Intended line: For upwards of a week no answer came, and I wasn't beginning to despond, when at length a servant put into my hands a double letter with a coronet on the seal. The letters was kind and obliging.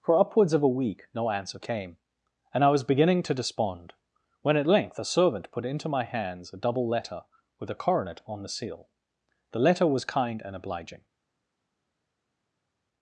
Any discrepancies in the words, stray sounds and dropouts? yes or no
yes